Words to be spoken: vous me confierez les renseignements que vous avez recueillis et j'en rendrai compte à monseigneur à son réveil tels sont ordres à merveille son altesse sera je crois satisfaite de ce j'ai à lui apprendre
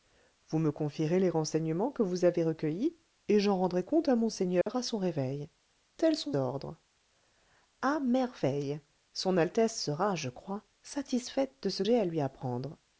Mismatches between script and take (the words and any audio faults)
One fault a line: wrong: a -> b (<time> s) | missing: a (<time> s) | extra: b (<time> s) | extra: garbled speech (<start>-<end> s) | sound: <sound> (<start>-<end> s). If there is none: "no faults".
sound: dropout (4.6-4.7 s)